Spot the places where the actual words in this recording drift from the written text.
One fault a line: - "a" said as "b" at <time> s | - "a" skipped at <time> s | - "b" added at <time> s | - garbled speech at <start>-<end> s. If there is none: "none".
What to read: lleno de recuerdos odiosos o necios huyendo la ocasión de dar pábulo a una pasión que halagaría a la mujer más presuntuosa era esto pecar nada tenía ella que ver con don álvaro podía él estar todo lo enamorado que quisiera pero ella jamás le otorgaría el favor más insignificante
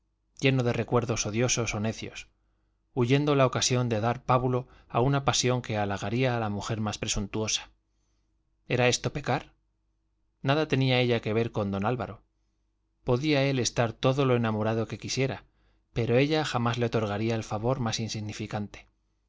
none